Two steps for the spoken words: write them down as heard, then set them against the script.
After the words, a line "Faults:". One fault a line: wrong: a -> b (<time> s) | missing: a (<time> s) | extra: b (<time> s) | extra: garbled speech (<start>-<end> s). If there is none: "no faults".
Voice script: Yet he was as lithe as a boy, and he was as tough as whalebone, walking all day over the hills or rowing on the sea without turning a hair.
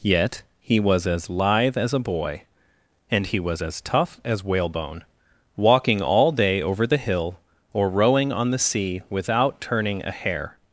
Yet he was as lithe as a boy, and he was as tough as whalebone, walking all day over the hill or rowing on the sea without turning a hair.
Faults:
wrong: hills -> hill (7.0 s)